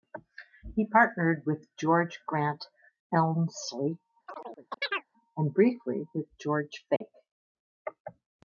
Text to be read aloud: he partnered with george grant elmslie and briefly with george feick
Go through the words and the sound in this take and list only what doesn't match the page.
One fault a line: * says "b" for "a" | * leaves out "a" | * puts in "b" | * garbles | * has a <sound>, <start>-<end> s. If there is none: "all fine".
* has a chirp, 4.3-5.1 s
* has a dropout, 7.0-7.0 s